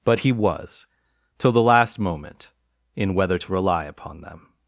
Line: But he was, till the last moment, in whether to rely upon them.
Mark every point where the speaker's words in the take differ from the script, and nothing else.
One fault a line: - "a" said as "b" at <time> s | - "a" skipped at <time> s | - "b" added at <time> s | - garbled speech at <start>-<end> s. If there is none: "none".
none